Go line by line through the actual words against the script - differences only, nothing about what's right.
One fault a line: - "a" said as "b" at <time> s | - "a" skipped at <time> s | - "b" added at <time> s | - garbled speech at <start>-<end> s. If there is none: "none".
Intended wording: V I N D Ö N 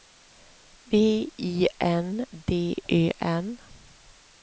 none